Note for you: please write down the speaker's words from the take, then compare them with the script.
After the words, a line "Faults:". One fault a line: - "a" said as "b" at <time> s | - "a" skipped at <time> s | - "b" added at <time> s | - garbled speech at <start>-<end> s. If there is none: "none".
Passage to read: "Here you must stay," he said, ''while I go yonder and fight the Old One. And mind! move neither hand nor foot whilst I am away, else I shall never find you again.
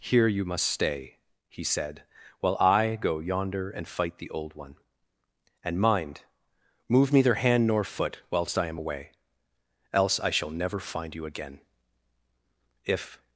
"Here you must stay," he said, ''while I go yonder and fight the Old One. And mind! move neither hand nor foot whilst I am away, else I shall never find you again. If
Faults:
- "If" added at 12.8 s